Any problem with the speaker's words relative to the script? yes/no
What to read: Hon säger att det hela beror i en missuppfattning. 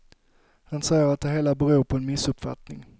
yes